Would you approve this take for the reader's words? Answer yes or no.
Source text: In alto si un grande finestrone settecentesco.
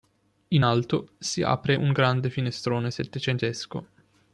no